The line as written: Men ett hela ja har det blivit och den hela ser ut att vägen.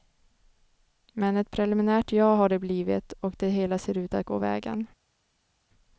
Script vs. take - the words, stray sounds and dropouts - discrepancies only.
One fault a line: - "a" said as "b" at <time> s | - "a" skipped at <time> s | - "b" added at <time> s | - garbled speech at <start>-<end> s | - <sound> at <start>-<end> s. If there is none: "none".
- "hela" said as "preliminärt" at 1.5 s
- "den" said as "det" at 3.4 s
- "gå" added at 4.2 s